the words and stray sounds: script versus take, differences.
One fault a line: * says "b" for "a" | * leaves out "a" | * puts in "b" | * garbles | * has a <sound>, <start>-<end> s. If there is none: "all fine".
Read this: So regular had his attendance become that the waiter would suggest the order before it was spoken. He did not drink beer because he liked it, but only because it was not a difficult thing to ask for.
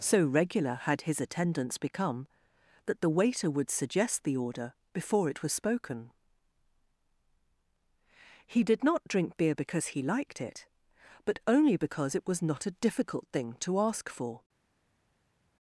all fine